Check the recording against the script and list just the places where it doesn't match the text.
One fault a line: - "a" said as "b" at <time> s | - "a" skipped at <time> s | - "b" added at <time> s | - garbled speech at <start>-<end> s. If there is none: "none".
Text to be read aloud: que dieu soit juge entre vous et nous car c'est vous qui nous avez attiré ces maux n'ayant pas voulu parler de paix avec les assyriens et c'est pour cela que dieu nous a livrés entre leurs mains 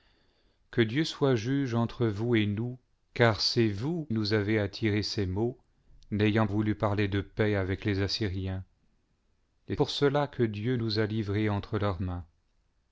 - "qui" skipped at 4.1 s
- "pas" skipped at 6.5 s
- "c'est" skipped at 9.8 s